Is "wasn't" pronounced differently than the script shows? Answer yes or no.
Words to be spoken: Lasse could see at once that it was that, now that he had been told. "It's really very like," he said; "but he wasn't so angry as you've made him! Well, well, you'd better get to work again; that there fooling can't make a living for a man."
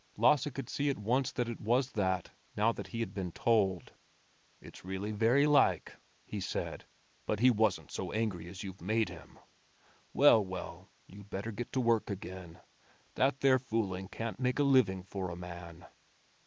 no